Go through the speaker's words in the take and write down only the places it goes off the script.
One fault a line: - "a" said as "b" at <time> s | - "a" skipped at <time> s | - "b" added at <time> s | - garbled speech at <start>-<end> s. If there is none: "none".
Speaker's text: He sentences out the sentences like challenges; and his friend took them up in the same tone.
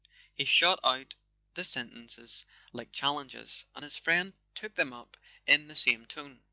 - "sentences" said as "shot" at 0.5 s